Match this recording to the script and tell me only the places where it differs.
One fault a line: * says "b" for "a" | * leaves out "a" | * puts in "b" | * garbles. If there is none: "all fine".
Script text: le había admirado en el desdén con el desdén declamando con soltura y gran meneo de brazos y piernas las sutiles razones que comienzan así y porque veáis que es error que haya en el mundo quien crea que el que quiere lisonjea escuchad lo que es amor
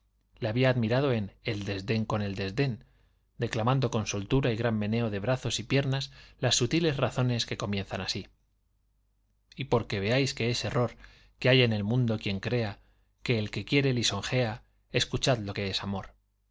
all fine